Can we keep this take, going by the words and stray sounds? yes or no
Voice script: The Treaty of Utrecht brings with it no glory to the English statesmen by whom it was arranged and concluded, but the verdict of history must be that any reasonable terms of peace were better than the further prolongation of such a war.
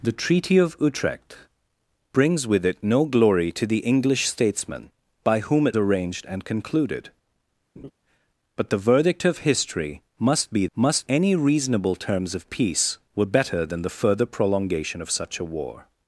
no